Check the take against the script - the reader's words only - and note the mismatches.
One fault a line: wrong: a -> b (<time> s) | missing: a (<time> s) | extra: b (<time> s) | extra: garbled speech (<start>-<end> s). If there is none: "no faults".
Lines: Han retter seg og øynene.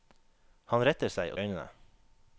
no faults